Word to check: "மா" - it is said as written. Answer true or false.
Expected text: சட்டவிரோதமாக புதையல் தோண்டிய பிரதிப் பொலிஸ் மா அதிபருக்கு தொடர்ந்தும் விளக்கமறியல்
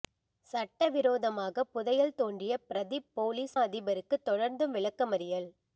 false